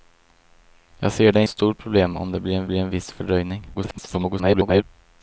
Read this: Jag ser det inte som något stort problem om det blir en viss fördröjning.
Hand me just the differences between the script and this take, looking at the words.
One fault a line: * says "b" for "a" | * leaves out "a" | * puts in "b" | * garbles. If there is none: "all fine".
* leaves out "inte som något"
* puts in "blir en"
* garbles